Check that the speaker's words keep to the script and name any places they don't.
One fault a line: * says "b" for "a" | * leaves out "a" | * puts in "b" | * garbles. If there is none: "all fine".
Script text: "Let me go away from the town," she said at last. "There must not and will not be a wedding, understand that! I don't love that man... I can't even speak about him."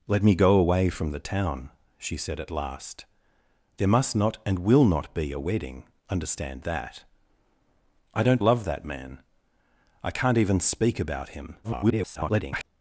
* garbles